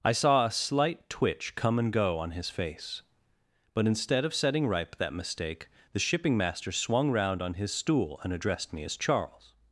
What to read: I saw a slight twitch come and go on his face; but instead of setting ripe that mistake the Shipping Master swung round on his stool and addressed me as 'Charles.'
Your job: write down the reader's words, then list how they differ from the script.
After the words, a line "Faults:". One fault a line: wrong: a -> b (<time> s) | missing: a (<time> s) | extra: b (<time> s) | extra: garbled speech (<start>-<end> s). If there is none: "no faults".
I saw a slight twitch come and go on his face; but instead of setting ripe that mistake the Shipping Master swung round on his stool and addressed me as 'Charles.'
Faults:
no faults